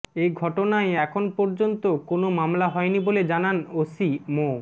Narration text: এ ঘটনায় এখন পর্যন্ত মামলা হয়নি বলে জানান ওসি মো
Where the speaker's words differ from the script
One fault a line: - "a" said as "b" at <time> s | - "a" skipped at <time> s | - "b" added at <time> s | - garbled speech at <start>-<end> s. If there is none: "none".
- "কোনো" added at 2.1 s